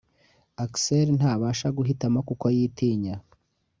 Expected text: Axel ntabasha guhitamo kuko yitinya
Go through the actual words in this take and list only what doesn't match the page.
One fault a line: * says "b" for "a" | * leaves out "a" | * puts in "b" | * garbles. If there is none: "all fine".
all fine